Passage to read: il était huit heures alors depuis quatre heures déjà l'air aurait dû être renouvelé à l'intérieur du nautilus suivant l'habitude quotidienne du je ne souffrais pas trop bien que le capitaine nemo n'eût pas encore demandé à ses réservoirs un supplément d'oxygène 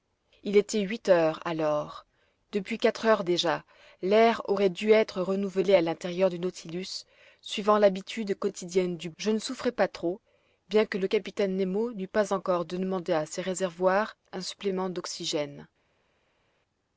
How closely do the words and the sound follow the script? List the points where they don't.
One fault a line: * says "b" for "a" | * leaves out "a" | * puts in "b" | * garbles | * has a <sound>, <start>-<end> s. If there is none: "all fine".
all fine